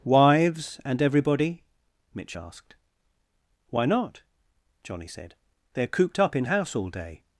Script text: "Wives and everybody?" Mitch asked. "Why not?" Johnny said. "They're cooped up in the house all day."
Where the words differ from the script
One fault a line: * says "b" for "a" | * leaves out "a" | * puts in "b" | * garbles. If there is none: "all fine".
* leaves out "the"